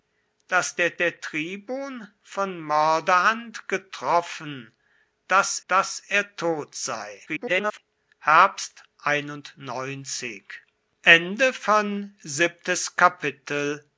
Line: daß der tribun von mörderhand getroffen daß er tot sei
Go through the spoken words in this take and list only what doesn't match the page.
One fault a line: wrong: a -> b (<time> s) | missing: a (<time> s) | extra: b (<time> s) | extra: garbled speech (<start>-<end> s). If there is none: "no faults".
extra: der (1.0 s)
extra: daß (5.7 s)
extra: garbled speech (7.3-7.8 s)